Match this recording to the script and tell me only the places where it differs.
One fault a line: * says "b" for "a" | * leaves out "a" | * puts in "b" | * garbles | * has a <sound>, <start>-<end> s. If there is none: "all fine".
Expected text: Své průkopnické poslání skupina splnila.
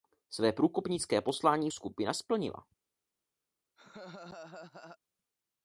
* has a laugh, 3.8-5.0 s